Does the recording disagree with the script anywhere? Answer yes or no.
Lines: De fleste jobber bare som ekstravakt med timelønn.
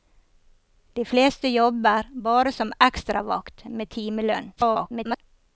yes